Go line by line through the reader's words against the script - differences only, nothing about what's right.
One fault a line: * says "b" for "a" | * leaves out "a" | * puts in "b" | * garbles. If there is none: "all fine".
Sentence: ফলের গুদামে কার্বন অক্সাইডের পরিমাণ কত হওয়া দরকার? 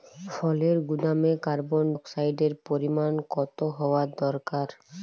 all fine